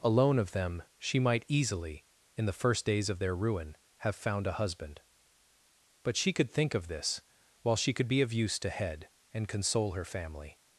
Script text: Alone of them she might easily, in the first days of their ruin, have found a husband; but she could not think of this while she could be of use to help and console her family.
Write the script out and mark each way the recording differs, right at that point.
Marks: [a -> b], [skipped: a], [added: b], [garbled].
Alone of them she might easily, in the first days of their ruin, have found a husband; but she could [skipped: not] think of this while she could be of use to [help -> head] and console her family.